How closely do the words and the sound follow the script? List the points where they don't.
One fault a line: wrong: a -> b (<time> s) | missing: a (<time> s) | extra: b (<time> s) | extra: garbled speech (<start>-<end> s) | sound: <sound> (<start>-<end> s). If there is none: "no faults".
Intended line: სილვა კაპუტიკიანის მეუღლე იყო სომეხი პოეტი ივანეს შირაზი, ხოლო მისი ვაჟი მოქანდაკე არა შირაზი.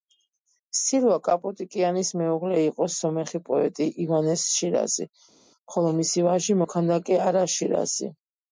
no faults